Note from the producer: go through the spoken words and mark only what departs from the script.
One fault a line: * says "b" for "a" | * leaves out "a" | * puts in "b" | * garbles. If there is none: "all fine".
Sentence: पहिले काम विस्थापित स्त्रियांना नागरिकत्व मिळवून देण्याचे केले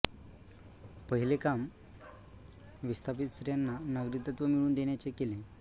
all fine